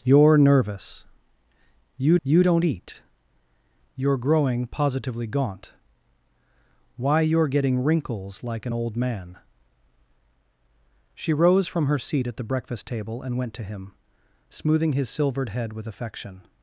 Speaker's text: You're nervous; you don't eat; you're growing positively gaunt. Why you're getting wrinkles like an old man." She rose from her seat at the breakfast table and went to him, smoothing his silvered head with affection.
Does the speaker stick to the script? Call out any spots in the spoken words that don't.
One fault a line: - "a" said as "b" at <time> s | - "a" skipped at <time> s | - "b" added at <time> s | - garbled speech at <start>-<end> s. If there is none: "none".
- "you" added at 2.2 s